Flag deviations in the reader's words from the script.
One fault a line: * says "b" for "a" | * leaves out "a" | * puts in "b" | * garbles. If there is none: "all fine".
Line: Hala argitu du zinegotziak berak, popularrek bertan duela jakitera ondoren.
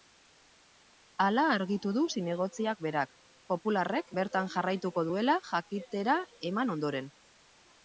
* puts in "jarraituko"
* puts in "eman"